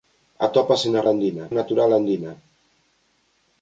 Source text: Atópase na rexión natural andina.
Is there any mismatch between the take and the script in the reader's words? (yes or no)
yes